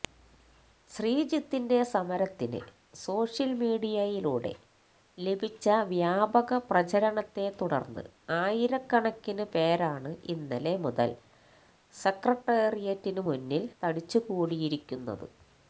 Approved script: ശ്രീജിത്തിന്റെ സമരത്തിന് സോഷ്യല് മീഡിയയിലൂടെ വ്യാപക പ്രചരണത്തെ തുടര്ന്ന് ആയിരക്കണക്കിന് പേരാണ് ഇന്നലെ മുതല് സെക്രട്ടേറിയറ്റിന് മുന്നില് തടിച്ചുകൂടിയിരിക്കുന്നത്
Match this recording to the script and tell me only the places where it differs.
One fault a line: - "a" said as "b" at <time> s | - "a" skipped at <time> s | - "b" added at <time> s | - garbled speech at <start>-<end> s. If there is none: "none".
- "ലഭിച്ച" added at 5.2 s